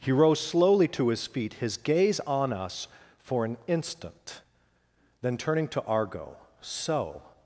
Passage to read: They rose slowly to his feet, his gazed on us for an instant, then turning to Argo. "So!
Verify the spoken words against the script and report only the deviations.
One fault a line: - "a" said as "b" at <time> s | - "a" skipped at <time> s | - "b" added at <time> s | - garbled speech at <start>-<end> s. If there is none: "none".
- "They" said as "He" at 0.0 s
- "gazed" said as "gaze" at 1.8 s